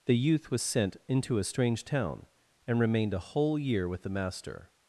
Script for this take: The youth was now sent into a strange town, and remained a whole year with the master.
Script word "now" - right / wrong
wrong